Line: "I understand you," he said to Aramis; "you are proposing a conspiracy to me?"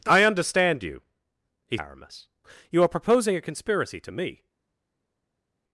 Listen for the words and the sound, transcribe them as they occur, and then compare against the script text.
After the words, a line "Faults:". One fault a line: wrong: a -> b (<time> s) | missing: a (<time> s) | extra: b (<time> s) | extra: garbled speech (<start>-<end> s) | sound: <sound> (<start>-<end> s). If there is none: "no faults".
"I understand you," he Aramis; "you are proposing a conspiracy to me?"
Faults:
missing: said to (1.8 s)